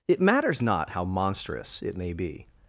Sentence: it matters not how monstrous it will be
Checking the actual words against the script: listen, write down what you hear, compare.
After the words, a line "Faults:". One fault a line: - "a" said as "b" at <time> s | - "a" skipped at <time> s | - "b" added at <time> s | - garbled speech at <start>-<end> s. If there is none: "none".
it matters not how monstrous it may be
Faults:
- "will" said as "may" at 2.0 s